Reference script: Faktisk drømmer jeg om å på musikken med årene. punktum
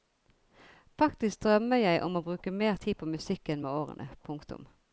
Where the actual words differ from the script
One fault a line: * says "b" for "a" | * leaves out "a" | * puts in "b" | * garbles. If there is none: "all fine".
* puts in "bruke mer tid"